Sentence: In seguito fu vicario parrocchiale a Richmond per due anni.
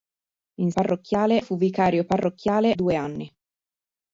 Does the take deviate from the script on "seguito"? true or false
true